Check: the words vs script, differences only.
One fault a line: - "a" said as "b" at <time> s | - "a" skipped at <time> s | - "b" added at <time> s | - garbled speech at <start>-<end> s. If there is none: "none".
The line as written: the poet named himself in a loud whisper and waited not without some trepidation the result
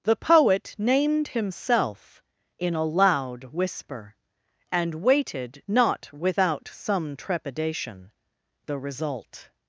none